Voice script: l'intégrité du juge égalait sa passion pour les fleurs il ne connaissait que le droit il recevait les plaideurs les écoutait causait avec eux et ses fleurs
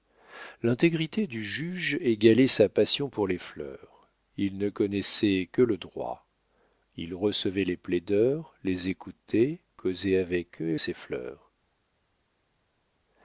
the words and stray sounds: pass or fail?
pass